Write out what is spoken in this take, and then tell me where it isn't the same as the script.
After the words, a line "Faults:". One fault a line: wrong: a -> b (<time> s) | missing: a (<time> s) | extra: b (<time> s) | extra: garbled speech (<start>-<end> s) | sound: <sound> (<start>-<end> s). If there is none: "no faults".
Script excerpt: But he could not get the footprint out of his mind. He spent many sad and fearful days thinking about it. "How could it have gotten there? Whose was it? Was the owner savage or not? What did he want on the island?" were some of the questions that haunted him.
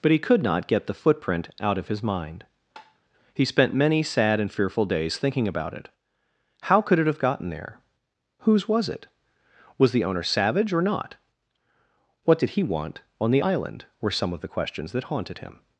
But he could not get the footprint out of his mind. He spent many sad and fearful days thinking about it. "How could it have gotten there? Whose was it? Was the owner savage or not? What did he want on the island?" were some of the questions that haunted him.
Faults:
sound: tap (2.8-3.0 s)